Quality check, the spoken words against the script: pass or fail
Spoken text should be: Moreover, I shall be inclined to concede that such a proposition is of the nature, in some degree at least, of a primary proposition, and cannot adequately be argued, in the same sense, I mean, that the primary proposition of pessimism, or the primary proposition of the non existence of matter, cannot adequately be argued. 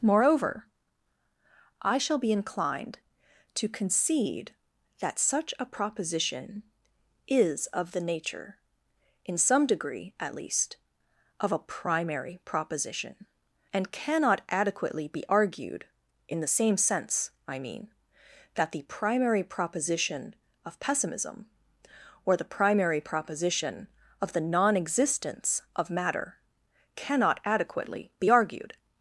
pass